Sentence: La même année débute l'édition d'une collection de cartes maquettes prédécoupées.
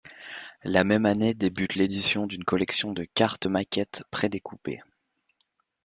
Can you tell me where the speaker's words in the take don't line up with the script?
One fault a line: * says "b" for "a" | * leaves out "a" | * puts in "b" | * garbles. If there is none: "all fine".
all fine